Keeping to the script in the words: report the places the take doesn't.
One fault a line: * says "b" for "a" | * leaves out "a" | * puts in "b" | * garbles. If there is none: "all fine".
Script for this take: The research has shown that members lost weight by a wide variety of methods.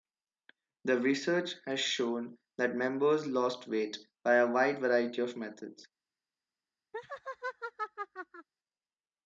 all fine